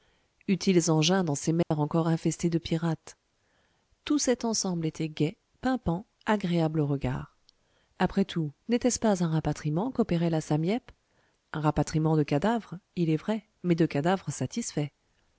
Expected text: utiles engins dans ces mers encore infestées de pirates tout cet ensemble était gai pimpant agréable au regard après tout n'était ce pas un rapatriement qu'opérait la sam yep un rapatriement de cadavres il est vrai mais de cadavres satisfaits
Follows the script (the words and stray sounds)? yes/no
no